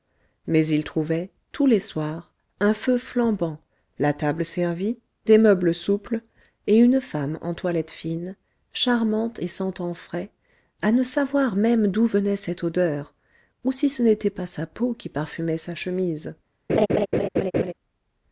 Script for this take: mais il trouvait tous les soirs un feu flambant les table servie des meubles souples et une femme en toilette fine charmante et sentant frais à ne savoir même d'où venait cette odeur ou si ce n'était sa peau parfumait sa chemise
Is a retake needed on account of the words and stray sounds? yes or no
yes